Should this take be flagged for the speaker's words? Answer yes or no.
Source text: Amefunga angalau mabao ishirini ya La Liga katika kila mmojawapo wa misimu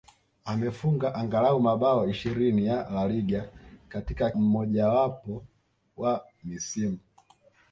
yes